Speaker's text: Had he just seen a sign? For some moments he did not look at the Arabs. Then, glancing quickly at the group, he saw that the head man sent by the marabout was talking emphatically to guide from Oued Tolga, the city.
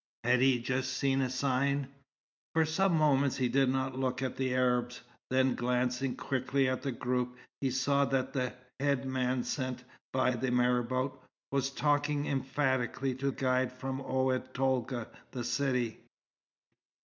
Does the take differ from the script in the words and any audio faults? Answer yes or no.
no